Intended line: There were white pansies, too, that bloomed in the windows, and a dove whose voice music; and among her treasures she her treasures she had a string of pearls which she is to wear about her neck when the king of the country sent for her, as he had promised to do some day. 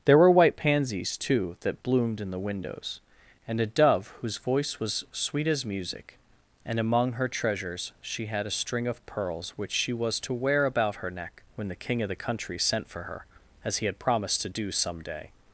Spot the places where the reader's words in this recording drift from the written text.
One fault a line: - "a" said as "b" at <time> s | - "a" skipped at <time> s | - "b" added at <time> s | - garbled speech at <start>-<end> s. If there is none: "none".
- "was sweet as" added at 4.8 s
- "her treasures she" skipped at 8.2 s
- "is" said as "was" at 9.9 s